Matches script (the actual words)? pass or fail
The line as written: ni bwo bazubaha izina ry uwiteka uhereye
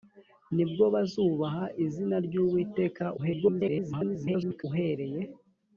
fail